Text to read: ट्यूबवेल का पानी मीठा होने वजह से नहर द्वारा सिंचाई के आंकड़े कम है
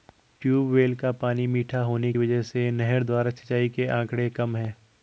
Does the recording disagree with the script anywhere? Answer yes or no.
no